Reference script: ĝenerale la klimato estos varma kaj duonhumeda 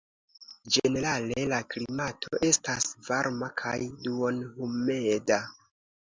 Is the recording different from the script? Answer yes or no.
yes